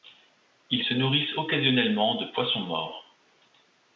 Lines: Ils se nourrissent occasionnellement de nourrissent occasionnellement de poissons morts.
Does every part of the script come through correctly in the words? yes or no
no